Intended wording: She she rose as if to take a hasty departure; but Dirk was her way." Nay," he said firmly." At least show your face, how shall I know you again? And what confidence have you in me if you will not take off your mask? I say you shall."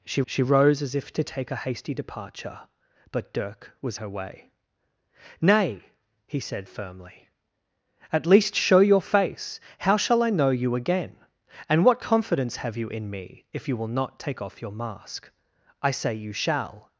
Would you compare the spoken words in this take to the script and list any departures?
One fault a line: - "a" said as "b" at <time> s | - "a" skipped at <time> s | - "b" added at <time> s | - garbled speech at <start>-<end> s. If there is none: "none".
none